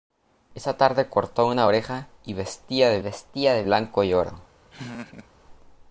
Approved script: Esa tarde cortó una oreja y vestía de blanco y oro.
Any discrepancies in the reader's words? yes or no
yes